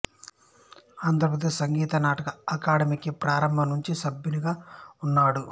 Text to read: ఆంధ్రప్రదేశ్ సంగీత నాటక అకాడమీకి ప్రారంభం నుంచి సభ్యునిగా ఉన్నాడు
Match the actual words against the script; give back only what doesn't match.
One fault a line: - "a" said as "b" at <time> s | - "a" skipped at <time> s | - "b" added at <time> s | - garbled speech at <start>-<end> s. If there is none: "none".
none